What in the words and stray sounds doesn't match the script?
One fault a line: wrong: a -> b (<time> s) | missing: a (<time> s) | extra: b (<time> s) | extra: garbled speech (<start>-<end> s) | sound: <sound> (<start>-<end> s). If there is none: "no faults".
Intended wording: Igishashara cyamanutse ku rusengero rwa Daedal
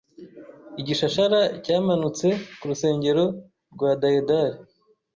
no faults